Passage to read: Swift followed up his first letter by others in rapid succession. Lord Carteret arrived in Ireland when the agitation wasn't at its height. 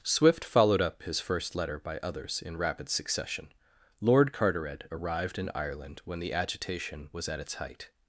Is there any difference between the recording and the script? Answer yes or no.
yes